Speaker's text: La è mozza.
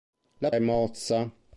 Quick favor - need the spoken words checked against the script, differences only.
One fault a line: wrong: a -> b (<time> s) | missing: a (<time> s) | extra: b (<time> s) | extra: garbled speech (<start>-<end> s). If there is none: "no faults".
no faults